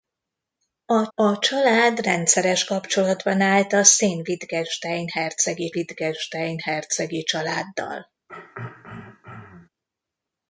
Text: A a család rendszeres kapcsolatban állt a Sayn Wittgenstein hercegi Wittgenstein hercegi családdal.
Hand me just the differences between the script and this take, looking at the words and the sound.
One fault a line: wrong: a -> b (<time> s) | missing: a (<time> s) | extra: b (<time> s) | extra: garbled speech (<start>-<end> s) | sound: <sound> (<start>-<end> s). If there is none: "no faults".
sound: throat clearing (8.3-9.7 s)